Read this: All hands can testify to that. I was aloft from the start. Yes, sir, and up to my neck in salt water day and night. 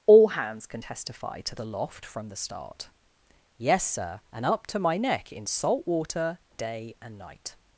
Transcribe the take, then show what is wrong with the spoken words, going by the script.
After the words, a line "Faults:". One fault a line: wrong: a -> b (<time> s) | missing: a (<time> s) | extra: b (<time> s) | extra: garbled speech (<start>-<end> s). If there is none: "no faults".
All hands can testify to aloft from the start. Yes, sir, and up to my neck in salt water day and night.
Faults:
missing: that I was (1.5 s)